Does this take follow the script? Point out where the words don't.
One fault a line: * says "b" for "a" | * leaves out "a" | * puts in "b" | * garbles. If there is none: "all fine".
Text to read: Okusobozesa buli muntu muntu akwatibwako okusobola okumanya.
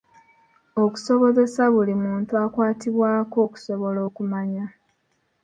* leaves out "muntu"